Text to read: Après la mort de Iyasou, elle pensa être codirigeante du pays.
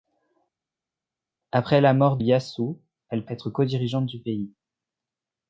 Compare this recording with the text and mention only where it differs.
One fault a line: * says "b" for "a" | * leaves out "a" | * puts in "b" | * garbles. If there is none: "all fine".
* leaves out "de"
* leaves out "pensa"